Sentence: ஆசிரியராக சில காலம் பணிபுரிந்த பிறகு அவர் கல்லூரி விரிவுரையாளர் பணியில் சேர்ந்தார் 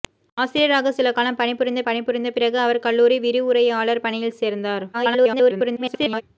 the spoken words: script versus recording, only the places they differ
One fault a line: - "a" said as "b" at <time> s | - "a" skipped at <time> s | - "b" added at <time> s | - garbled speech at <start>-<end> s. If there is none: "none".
- "பணிபுரிந்த" added at 1.8 s
- garbled speech at 4.9-6.2 s